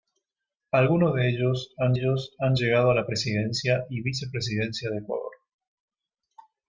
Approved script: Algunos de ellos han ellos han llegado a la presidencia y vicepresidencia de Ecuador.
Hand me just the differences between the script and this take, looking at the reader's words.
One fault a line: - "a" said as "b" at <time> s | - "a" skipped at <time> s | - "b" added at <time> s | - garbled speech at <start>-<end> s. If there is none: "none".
none